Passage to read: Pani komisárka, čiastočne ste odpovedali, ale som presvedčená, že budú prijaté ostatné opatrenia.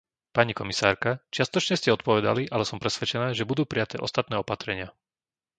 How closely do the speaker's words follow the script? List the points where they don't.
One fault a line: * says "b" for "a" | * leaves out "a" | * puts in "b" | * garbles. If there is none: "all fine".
all fine